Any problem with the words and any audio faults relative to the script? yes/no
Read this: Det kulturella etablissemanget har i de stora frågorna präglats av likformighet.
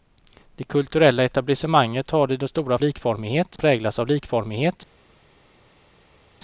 yes